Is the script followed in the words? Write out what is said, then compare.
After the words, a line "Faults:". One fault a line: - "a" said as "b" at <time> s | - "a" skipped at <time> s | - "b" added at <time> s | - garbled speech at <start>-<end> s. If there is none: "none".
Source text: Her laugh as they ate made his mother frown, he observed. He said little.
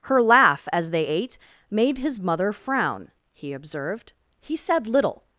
Her laugh as they ate made his mother frown, he observed. He said little.
Faults:
none